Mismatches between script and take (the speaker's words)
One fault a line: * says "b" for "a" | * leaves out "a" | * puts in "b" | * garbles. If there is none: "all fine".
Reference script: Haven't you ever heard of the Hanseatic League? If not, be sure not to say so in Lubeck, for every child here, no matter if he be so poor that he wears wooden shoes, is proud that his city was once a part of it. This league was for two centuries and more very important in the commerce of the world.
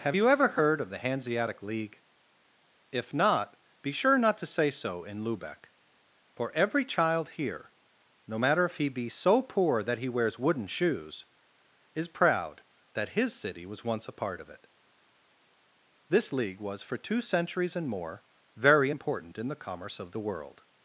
* says "Have" for "Haven't"